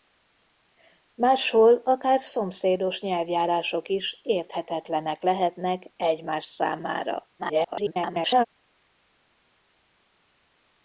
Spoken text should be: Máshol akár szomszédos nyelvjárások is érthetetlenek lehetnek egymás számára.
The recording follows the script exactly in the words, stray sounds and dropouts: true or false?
false